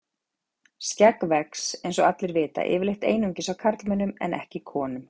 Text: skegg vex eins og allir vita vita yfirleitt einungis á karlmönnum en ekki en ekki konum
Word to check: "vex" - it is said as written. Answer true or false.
true